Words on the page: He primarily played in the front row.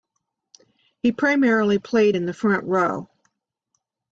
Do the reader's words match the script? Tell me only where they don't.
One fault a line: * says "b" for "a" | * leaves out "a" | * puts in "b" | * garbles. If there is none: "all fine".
all fine